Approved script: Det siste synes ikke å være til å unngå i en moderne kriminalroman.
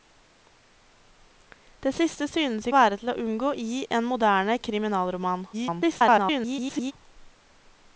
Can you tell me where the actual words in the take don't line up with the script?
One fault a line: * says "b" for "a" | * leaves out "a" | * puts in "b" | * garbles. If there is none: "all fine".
* leaves out "ikke"
* garbles